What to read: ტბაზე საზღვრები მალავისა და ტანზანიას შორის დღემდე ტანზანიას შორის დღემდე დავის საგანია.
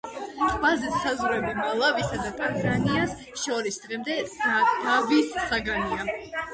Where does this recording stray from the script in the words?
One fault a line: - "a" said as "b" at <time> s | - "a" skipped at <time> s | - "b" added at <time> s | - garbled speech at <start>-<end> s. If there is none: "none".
- "ტანზანიას შორის დღემდე" skipped at 4.2 s